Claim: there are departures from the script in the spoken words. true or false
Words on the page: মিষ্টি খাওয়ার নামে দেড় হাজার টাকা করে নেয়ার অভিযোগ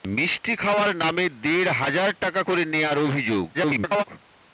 true